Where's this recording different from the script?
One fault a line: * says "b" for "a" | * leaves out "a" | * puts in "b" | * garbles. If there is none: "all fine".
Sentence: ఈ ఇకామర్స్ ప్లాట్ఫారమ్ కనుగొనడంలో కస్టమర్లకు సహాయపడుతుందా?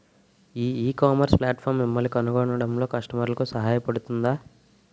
* puts in "మిమ్మల్ని"